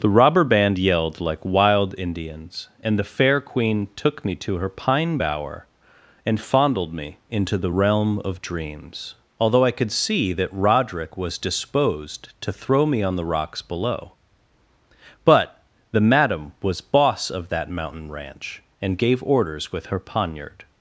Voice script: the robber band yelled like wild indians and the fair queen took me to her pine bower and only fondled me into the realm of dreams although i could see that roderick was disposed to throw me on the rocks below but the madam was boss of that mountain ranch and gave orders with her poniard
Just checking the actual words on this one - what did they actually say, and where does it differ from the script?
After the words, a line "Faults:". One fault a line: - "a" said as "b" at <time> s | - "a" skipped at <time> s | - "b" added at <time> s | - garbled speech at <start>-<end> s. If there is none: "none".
the robber band yelled like wild indians and the fair queen took me to her pine bower and fondled me into the realm of dreams although i could see that roderick was disposed to throw me on the rocks below but the madam was boss of that mountain ranch and gave orders with her poniard
Faults:
- "only" skipped at 6.4 s